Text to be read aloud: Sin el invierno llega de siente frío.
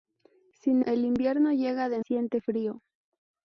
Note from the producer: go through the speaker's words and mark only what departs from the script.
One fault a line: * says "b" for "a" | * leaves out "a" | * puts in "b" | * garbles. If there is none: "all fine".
all fine